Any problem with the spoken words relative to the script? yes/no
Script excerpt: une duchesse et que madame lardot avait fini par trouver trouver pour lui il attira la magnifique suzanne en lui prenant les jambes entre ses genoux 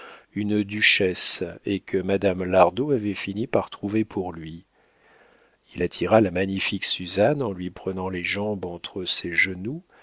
yes